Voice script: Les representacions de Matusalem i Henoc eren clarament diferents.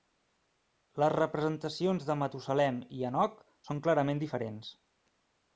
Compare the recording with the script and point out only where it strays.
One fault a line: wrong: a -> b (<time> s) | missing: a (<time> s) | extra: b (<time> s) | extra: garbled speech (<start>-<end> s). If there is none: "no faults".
wrong: eren -> són (3.7 s)